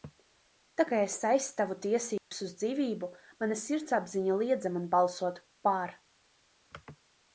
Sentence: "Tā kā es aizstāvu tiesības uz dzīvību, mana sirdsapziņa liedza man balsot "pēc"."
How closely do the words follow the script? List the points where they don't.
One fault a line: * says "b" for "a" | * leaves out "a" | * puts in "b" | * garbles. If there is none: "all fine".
* says "par" for "pēc"